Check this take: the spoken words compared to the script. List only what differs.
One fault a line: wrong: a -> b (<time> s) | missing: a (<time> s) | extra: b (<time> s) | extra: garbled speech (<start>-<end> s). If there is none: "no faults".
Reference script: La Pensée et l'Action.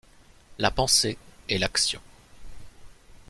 no faults